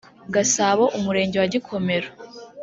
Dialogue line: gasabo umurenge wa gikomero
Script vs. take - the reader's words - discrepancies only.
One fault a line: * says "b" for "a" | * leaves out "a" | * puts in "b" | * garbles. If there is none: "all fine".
all fine